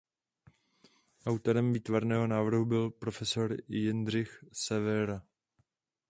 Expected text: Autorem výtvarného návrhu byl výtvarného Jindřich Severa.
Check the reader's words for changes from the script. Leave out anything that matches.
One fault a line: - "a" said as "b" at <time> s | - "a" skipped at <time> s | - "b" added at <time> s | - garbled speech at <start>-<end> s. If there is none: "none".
- "výtvarného" said as "profesor" at 2.9 s